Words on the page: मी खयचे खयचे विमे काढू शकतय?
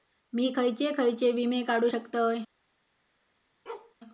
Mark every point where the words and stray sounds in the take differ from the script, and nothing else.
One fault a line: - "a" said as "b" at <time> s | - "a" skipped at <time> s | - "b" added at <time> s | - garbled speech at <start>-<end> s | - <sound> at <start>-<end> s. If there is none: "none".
- bark at 3.7-4.0 s